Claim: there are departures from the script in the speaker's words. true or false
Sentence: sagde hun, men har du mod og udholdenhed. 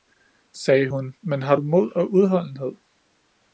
false